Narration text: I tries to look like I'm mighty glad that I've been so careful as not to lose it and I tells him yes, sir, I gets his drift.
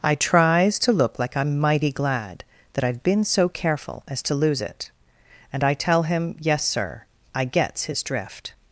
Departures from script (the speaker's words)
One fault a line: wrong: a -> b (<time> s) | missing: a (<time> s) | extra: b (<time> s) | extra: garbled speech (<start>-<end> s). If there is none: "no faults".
missing: not (4.2 s)
wrong: tells -> tell (5.7 s)